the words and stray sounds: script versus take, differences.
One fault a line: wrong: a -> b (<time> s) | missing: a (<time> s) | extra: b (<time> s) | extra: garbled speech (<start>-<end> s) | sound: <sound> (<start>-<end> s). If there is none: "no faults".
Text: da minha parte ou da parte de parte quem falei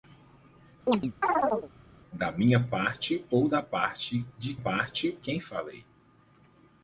sound: chirp (0.9-1.7 s)